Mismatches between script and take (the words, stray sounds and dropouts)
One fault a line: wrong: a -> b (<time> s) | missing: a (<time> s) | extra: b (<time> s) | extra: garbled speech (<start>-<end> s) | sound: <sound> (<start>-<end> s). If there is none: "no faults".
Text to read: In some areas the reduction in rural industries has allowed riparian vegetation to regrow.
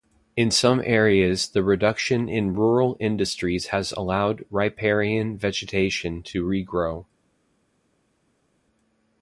no faults